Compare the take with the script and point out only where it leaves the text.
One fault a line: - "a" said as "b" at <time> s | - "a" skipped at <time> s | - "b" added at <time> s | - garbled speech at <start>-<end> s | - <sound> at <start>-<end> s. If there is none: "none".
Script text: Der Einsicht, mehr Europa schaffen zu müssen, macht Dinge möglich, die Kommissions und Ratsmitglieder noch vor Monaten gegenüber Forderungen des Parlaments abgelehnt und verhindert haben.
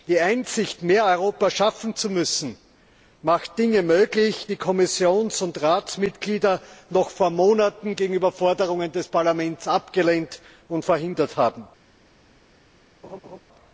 - "Der" said as "Die" at 0.1 s
- laugh at 13.0-13.4 s